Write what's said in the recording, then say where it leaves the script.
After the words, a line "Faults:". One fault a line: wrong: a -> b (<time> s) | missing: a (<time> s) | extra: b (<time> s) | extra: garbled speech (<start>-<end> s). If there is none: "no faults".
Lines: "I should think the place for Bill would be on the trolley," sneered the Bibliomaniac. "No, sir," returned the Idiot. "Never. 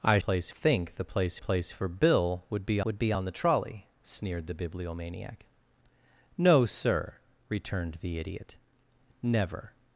"I place think the place place for Bill would be would be on the trolley," sneered the Bibliomaniac. "No, sir," returned the Idiot. "Never.
Faults:
wrong: should -> place (0.2 s)
extra: place (1.4 s)
extra: would be (2.8 s)